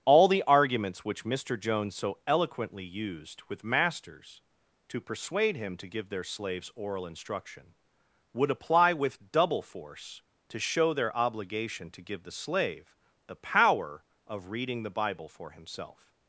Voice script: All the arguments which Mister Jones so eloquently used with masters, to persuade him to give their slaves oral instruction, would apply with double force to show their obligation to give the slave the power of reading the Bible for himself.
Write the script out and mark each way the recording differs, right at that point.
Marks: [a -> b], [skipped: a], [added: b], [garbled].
All the arguments which Mister Jones so eloquently used with masters, to persuade him to give their slaves oral instruction, would apply with double force to show their obligation to give the slave the power of reading the Bible for himself.